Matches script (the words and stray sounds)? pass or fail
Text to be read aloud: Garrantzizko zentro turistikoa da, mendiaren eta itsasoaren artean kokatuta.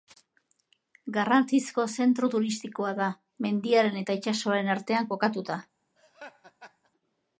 fail